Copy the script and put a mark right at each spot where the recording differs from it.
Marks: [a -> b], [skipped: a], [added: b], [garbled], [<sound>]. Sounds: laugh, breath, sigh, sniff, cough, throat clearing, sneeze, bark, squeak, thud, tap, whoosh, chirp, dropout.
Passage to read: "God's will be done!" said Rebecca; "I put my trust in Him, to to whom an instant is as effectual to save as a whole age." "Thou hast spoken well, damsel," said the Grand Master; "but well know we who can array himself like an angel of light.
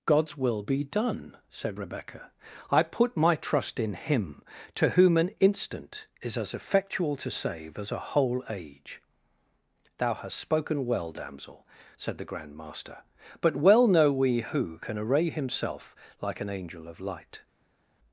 "God's will be done!" said Rebecca; "I put my trust in Him, to [skipped: to] whom an instant is as effectual to save as a whole age." "Thou hast spoken well, damsel," said the Grand Master; "but well know we who can array himself like an angel of light.